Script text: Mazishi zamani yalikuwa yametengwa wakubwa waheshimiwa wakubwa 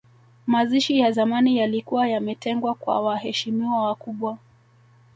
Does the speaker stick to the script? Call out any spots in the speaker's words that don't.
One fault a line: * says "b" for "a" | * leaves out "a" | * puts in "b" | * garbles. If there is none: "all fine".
* puts in "ya"
* says "kwa" for "wakubwa"